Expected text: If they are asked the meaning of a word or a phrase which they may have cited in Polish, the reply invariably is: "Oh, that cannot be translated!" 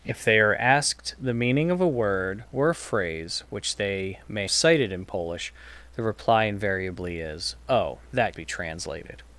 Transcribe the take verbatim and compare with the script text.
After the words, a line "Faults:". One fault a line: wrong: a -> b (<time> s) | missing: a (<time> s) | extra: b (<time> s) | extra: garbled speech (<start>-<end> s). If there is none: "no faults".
If they are asked the meaning of a word or a phrase which they may cited in Polish, the reply invariably is: "Oh, that be translated!"
Faults:
missing: have (4.5 s)
missing: cannot (8.4 s)